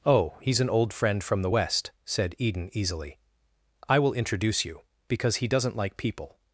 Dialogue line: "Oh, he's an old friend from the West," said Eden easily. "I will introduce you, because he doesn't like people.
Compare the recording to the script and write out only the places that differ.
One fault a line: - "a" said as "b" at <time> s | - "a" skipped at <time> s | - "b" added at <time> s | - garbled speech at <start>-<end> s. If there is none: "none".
none